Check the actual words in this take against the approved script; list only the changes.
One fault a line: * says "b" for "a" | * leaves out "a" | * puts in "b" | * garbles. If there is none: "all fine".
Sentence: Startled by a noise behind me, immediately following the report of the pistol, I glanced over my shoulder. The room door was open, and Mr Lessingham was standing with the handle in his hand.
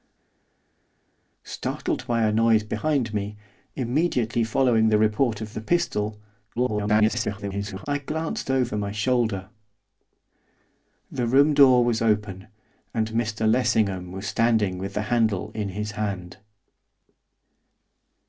* garbles